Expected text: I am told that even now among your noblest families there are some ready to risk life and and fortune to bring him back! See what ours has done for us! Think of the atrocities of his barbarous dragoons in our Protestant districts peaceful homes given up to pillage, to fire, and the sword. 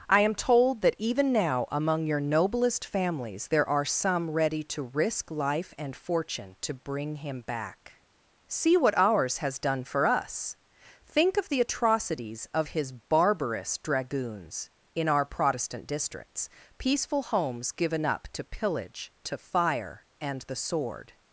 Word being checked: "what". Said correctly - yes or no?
yes